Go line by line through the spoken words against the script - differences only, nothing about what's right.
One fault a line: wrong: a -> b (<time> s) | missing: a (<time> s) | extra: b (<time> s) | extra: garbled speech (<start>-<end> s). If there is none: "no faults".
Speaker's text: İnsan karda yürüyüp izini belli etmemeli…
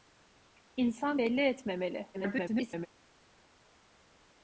missing: karda yürüyüp izini (1.2 s)
extra: garbled speech (2.1-2.9 s)